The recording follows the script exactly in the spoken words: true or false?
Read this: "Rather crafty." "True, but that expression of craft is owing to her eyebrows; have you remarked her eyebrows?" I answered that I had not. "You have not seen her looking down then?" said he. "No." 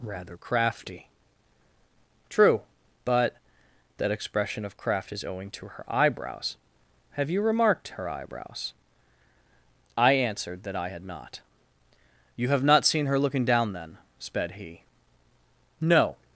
false